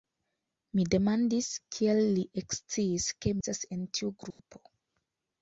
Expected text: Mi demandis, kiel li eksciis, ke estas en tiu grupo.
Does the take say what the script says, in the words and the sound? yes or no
no